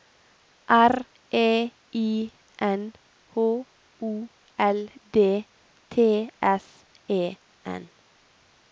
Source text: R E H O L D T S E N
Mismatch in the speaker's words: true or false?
true